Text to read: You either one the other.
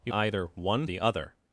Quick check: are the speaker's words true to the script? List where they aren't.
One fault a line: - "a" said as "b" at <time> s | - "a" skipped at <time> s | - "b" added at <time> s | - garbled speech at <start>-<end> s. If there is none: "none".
none